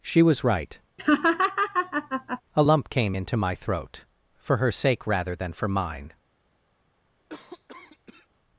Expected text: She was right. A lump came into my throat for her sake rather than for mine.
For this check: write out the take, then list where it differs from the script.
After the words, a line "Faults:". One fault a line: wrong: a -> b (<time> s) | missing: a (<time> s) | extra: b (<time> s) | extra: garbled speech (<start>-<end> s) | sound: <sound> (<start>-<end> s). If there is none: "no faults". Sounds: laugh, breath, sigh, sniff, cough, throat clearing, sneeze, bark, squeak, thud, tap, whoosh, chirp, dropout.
She was right. A lump came into my throat for her sake rather than for mine.
Faults:
sound: laugh (1.0-2.4 s)
sound: cough (7.3-8.3 s)